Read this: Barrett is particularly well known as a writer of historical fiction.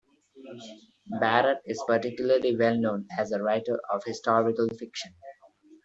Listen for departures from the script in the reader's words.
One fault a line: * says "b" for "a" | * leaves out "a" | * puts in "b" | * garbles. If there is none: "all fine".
all fine